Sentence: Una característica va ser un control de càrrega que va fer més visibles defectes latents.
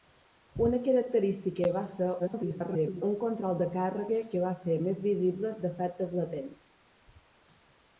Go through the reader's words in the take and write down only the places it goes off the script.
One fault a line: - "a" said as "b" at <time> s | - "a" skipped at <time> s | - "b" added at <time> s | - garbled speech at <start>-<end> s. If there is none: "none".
- garbled speech at 2.2-3.0 s